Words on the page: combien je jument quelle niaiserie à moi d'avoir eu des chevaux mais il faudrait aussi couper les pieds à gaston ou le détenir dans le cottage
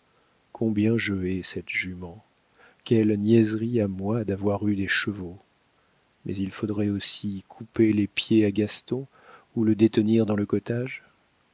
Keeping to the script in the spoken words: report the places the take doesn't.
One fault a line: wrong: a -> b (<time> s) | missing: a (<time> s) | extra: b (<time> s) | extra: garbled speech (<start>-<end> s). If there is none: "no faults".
extra: hais cette (1.1 s)